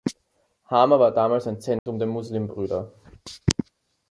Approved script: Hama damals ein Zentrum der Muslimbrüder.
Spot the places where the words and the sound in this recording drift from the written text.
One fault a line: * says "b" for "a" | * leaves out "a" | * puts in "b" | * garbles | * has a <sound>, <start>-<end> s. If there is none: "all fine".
* puts in "war"
* has a dropout, 1.8-1.9 s